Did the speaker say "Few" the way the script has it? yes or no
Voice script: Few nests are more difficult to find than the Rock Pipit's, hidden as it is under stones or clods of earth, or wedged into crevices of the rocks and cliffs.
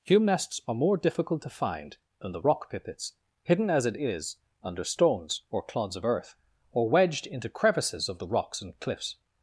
no